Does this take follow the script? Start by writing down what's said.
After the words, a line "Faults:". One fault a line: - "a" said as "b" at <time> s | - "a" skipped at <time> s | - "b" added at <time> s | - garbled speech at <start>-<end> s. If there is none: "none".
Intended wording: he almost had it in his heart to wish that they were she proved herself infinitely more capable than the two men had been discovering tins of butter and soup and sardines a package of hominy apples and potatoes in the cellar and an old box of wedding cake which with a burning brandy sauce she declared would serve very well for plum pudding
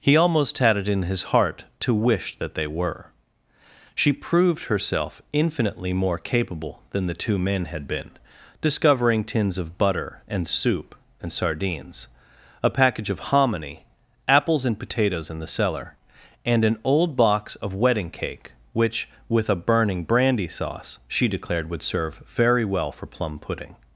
he almost had it in his heart to wish that they were she proved herself infinitely more capable than the two men had been discovering tins of butter and soup and sardines a package of hominy apples and potatoes in the cellar and an old box of wedding cake which with a burning brandy sauce she declared would serve very well for plum pudding
Faults:
none